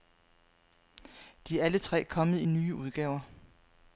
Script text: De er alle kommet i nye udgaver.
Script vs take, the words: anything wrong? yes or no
yes